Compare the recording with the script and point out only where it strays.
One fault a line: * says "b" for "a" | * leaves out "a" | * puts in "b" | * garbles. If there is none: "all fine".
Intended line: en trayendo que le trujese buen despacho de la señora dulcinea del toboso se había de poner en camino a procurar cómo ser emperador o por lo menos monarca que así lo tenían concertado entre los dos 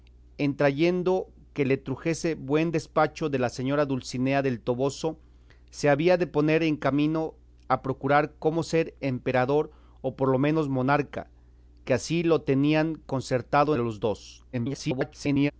* leaves out "entre"
* garbles